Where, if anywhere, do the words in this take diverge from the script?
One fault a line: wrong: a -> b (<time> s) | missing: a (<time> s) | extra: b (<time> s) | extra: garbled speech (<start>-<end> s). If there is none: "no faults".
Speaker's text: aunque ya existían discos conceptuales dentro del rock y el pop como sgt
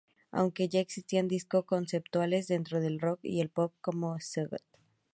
no faults